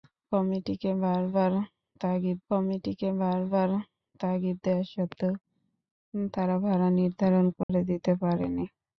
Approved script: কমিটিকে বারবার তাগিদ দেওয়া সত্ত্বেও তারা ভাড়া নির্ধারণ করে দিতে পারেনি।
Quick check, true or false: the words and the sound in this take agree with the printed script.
false